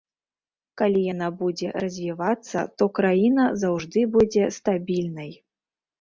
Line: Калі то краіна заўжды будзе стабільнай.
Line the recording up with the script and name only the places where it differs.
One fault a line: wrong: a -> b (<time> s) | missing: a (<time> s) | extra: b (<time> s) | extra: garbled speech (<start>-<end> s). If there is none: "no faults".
extra: яна будзе развівацца (1.1 s)